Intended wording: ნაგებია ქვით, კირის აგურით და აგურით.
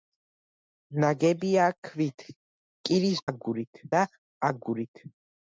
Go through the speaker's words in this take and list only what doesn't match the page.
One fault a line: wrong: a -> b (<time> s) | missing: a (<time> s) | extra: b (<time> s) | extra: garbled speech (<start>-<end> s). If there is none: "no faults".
no faults